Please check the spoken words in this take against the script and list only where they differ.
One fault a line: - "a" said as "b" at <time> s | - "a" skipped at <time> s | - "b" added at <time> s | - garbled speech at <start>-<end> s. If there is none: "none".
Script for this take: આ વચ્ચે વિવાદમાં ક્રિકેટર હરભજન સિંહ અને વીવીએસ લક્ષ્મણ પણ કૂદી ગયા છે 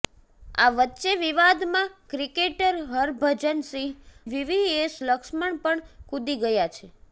- "અને" skipped at 3.9 s